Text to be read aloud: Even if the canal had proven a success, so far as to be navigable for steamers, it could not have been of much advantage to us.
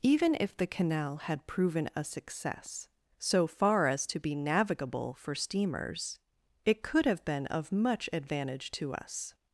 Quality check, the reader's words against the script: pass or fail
fail